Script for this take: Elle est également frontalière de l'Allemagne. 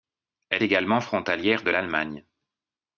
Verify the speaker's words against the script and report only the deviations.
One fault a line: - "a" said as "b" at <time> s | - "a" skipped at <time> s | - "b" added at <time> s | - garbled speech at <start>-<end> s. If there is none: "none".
- "est" skipped at 0.6 s